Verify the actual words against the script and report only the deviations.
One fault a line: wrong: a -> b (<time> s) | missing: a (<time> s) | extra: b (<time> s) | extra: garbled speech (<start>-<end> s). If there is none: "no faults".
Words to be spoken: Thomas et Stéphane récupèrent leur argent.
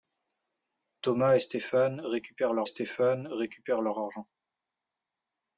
extra: Stéphane récupèrent leur (2.6 s)